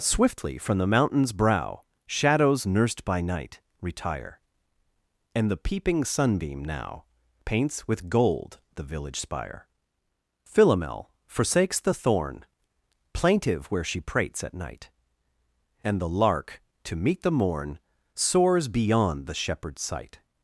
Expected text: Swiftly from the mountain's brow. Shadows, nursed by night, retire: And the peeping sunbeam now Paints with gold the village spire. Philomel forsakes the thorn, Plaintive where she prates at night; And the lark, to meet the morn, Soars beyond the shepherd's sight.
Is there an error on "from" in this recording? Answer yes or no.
no